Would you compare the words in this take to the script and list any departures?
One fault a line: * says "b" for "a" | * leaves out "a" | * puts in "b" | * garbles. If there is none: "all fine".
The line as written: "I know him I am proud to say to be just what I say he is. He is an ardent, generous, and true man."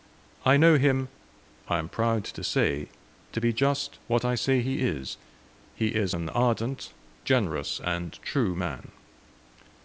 all fine